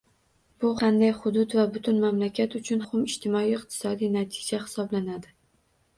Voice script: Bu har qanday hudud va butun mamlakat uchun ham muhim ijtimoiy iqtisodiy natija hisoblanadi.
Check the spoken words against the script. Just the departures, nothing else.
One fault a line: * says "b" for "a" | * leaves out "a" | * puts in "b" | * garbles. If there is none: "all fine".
* leaves out "har"
* leaves out "ham"